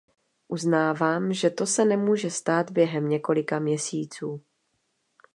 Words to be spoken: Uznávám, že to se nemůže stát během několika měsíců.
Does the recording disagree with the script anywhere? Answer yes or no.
no